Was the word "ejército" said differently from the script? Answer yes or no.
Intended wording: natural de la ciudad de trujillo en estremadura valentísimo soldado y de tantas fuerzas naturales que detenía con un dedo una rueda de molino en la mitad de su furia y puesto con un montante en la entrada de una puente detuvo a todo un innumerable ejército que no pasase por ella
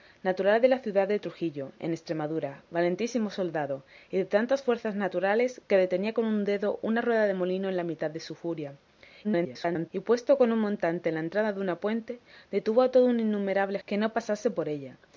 yes